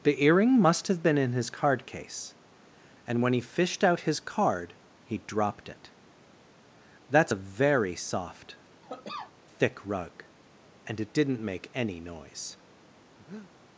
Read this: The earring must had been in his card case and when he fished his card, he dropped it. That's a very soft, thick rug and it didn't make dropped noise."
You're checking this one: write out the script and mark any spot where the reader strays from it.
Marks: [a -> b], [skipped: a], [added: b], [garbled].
The earring must [had -> have] been in his card case and when he fished [added: out] his card, he dropped it. That's a very soft, thick rug and it didn't make [dropped -> any] noise."